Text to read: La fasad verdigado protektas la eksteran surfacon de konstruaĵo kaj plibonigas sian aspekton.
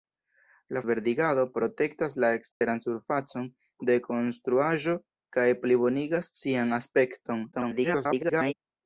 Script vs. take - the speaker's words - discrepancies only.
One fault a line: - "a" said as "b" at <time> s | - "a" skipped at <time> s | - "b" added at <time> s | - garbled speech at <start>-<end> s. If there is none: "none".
- "fasad" skipped at 0.8 s
- garbled speech at 7.5-8.5 s